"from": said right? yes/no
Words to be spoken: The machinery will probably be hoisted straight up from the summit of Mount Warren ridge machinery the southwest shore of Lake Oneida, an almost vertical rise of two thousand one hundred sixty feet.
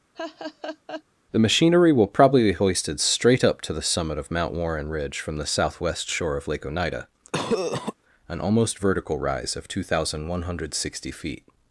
no